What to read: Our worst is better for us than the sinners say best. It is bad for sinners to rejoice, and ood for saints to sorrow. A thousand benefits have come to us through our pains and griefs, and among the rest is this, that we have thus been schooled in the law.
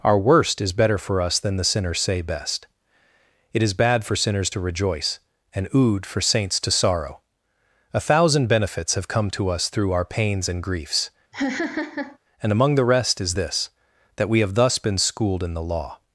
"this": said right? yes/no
yes